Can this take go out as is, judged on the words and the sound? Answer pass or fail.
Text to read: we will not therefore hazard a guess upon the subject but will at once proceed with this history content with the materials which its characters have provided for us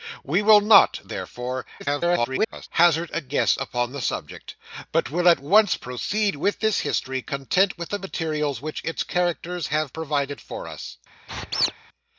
fail